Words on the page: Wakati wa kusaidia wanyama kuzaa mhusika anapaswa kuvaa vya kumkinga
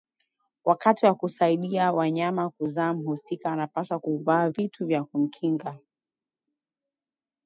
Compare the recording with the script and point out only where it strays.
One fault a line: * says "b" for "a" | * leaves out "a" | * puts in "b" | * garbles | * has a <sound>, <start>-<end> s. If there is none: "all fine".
* puts in "vitu"